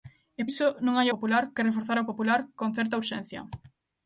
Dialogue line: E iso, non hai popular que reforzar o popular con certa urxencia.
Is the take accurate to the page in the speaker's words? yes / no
yes